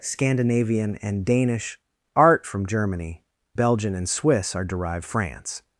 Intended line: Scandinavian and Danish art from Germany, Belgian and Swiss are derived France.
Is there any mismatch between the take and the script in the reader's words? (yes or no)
no